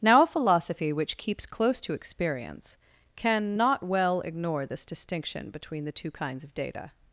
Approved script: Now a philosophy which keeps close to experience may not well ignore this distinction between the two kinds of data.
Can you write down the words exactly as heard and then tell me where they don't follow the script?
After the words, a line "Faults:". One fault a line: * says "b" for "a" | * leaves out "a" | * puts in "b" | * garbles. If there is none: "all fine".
Now a philosophy which keeps close to experience can not well ignore this distinction between the two kinds of data.
Faults:
* says "can" for "may"